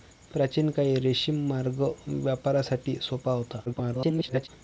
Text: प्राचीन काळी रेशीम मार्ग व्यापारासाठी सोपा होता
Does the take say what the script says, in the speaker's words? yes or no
no